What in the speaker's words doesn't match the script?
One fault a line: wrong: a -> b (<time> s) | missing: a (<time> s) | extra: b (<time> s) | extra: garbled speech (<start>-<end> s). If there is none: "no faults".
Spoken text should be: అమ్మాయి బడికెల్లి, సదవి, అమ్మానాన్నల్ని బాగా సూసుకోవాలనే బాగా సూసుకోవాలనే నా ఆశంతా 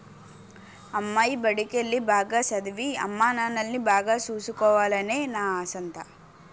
extra: బాగా (2.1 s)
missing: బాగా సూసుకోవాలనే (5.2 s)